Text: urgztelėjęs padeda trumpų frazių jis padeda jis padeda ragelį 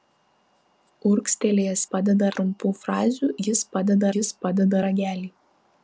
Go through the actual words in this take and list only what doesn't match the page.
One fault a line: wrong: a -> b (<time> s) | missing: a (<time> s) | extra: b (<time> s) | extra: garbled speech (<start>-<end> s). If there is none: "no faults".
no faults